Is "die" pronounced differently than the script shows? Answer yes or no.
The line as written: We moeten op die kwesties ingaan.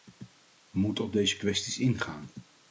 yes